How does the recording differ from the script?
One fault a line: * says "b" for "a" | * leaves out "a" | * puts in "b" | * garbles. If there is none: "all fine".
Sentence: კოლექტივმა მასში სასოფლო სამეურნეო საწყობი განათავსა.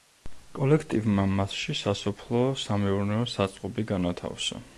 all fine